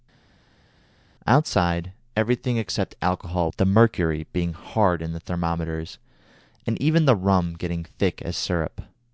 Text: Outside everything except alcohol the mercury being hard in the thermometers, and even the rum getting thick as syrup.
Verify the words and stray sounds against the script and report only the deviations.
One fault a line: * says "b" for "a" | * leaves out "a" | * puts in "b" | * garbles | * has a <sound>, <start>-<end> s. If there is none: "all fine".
all fine